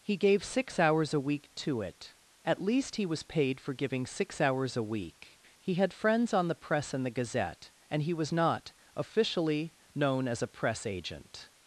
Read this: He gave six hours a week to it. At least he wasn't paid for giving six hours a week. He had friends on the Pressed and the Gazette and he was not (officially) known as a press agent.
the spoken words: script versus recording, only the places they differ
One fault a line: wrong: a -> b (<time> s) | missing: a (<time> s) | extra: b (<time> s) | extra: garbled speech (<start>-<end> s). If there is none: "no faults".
wrong: wasn't -> was (3.0 s)
wrong: Pressed -> Press (6.5 s)